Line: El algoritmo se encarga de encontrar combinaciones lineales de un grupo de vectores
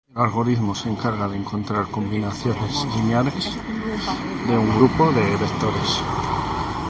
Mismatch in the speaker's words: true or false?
false